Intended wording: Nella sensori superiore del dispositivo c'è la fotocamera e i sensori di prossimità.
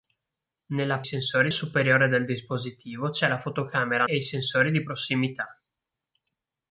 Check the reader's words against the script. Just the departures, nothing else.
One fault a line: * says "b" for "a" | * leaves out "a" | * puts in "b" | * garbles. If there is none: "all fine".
all fine